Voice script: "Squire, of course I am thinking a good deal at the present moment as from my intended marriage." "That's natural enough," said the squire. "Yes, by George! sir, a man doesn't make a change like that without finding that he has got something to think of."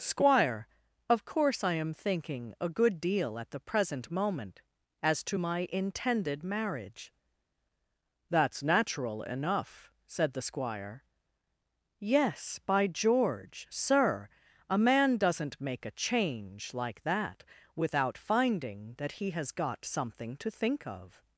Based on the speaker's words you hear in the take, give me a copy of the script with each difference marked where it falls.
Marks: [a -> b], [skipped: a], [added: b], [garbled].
"Squire, of course I am thinking a good deal at the present moment as [from -> to] my intended marriage." "That's natural enough," said the squire. "Yes, by George! sir, a man doesn't make a change like that without finding that he has got something to think of."